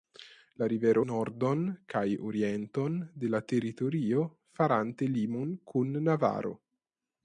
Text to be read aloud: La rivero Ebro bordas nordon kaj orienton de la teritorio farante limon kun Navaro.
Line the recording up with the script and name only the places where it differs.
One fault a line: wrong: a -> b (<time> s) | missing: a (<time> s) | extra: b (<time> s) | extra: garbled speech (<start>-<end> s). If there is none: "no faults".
missing: Ebro bordas (1.0 s)